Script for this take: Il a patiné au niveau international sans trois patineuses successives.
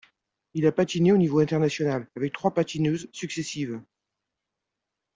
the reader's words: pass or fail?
fail